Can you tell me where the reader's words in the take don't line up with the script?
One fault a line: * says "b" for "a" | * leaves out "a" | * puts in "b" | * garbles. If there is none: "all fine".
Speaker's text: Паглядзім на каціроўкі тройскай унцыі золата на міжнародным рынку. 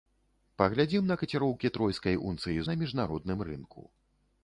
* leaves out "золата"